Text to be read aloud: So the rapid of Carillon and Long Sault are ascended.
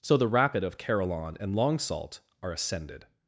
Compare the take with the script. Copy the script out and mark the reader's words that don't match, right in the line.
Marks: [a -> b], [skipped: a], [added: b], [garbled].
So the rapid of Carillon and Long Sault are ascended.